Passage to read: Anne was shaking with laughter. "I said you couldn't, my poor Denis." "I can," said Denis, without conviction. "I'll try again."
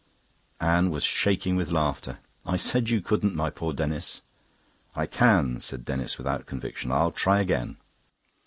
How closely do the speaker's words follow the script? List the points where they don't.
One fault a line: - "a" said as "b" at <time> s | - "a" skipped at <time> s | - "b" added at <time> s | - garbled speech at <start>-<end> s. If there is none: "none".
none